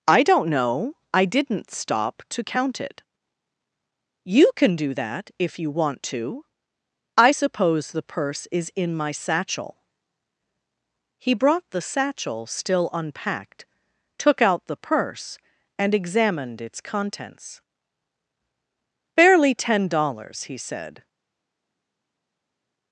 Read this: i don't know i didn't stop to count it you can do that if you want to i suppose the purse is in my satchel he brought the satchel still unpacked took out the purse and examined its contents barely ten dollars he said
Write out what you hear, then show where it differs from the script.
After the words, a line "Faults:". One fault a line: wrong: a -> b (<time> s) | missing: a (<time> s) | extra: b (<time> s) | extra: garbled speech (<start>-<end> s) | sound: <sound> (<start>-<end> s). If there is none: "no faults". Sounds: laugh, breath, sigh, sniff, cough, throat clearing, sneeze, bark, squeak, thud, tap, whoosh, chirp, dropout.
i don't know i didn't stop to count it you can do that if you want to i suppose the purse is in my satchel he brought the satchel still unpacked took out the purse and examined its contents barely ten dollars he said
Faults:
no faults